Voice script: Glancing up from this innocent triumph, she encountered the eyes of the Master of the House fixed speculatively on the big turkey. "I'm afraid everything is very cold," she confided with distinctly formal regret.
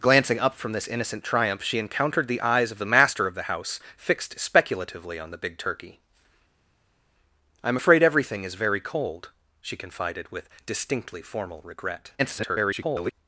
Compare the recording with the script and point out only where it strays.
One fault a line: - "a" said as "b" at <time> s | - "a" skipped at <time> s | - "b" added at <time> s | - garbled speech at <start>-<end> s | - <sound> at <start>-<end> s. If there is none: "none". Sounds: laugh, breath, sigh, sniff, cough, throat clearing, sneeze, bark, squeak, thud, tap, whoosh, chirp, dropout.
- garbled speech at 12.2-13.1 s